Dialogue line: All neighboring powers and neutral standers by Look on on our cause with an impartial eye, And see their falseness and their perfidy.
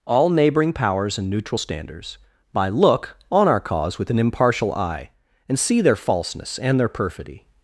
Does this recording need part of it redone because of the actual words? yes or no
yes